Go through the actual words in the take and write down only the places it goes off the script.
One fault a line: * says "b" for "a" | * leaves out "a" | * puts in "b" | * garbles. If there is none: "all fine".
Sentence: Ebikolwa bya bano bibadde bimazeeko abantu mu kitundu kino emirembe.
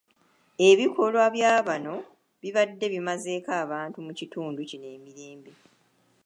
all fine